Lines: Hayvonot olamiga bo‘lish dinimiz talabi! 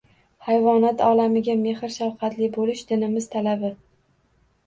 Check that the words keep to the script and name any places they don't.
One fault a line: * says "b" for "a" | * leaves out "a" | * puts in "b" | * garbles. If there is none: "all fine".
* puts in "mehr shafqatli"